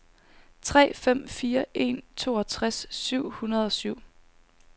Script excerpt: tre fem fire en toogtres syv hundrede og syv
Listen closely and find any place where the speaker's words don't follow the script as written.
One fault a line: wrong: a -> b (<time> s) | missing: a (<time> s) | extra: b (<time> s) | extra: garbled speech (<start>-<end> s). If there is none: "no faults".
no faults